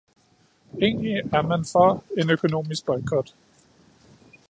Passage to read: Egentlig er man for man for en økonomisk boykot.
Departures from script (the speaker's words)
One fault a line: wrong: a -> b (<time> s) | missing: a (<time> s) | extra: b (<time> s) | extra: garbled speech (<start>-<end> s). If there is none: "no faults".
missing: man for (2.0 s)